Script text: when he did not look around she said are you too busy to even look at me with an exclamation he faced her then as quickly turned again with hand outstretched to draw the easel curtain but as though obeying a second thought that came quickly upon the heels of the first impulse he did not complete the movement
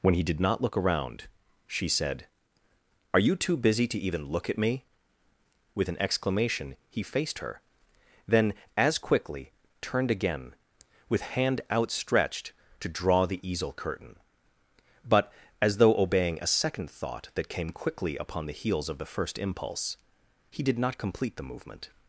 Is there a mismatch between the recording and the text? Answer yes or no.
no